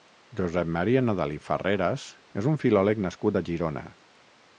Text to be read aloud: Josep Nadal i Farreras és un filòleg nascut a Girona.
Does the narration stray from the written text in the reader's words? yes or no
yes